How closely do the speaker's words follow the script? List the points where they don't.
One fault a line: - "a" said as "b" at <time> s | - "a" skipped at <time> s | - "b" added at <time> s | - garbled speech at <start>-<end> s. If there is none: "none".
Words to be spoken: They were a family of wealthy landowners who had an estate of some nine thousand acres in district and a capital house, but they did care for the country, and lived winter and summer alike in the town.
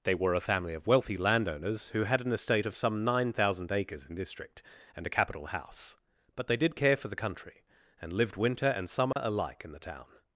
none